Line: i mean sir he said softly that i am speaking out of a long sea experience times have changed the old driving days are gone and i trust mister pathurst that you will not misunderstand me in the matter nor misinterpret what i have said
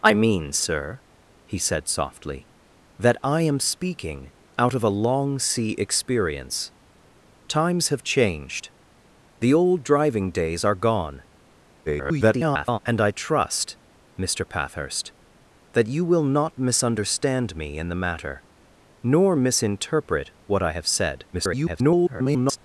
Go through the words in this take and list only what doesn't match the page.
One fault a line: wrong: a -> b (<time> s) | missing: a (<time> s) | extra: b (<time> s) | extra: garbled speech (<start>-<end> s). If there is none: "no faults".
extra: garbled speech (11.9-12.8 s)
extra: garbled speech (21.3-22.6 s)